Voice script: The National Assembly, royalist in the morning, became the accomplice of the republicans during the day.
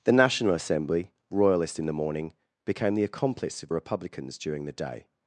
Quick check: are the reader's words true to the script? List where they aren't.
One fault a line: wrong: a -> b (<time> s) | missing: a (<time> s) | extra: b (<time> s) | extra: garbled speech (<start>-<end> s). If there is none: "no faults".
missing: the (3.7 s)